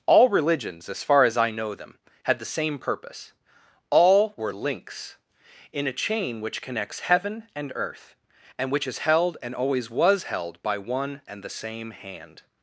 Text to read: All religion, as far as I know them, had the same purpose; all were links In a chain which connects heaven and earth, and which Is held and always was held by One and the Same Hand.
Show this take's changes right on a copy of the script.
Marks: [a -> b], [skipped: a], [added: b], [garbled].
All [religion, -> religions] as far as I know them, had the same purpose; all were links In a chain which connects heaven and earth, and which Is held and always was held by One and the Same Hand.